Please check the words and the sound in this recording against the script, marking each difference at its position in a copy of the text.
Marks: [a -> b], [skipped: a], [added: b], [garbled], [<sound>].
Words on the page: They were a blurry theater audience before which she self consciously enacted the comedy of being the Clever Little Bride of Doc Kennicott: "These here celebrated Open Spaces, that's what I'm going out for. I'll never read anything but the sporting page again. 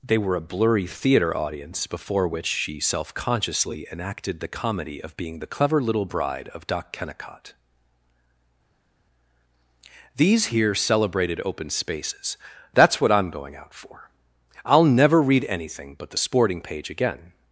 They were a blurry theater audience before which she self consciously enacted the comedy of being the Clever Little Bride of Doc Kennicott: "These here celebrated Open Spaces, that's what I'm going out for. I'll never read anything but the sporting page again.